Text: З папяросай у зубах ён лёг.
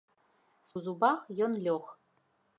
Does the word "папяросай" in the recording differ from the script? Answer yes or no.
yes